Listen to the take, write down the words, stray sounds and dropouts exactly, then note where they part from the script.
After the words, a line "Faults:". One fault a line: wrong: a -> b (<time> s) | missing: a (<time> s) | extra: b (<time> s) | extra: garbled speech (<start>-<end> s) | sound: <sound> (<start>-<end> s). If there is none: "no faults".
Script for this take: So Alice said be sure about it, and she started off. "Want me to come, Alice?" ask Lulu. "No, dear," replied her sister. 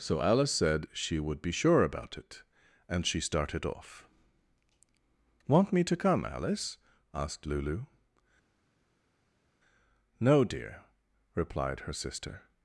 So Alice said she would be sure about it, and she started off. "Want me to come, Alice?" asked Lulu. "No, dear," replied her sister.
Faults:
extra: she would (0.9 s)
wrong: ask -> asked (7.1 s)